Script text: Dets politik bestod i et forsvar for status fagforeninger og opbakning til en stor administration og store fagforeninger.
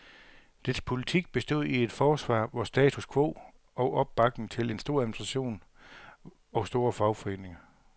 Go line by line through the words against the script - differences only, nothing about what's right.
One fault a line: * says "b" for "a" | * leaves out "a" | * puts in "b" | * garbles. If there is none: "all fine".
* says "quo" for "fagforeninger"